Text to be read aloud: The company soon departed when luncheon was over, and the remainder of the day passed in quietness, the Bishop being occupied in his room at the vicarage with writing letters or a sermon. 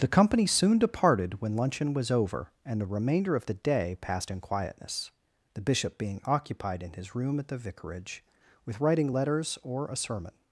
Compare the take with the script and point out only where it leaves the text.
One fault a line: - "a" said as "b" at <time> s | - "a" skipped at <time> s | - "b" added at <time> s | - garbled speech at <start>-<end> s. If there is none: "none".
none